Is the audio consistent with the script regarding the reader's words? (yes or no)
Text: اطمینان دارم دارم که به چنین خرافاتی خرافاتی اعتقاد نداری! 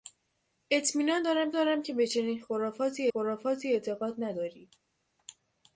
yes